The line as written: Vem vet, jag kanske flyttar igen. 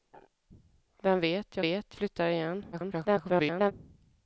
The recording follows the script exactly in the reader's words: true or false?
false